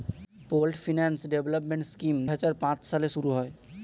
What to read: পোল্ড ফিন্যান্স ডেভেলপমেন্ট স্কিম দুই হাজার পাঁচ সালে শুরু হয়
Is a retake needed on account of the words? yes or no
yes